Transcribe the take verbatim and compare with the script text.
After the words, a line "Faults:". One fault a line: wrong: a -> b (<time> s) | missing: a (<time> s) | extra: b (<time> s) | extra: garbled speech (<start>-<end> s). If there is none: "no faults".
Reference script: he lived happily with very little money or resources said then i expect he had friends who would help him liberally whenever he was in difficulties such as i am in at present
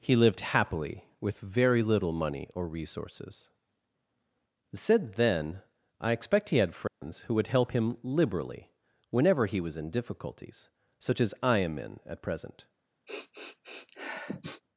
he lived happily with very little money or resources said then i expect he had friends who would help him liberally whenever he was in difficulties such as i am in at present
Faults:
no faults